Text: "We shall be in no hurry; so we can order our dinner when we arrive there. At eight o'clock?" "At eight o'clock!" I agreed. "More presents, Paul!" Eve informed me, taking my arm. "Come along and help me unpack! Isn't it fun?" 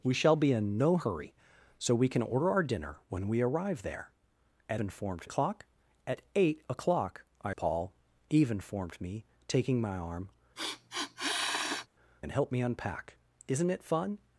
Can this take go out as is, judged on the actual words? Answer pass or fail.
fail